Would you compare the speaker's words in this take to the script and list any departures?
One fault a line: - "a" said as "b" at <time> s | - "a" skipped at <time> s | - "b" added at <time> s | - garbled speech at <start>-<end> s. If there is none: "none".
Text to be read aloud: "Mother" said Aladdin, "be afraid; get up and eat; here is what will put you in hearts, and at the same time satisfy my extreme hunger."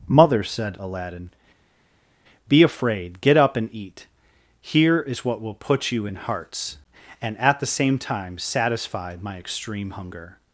none